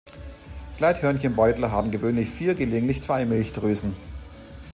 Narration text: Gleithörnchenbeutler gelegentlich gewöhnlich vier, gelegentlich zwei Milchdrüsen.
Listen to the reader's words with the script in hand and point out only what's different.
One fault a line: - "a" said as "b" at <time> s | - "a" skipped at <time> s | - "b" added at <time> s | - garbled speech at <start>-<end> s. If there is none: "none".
- "gelegentlich" said as "haben" at 1.7 s